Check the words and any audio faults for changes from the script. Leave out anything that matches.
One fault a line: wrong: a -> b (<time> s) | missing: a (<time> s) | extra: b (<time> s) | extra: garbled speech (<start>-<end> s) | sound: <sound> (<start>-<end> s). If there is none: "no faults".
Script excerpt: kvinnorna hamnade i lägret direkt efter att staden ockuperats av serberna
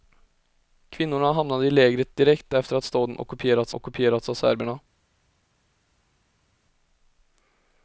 extra: ockuperats (3.7 s)